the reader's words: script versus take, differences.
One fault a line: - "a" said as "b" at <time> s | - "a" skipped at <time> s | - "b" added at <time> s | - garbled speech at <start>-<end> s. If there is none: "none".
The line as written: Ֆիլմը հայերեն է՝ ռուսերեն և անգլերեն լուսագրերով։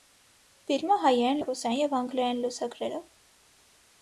none